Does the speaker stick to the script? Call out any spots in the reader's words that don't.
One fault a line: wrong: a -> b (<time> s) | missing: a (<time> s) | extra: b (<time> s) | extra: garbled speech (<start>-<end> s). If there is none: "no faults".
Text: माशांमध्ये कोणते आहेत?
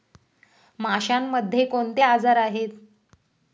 extra: आजार (2.0 s)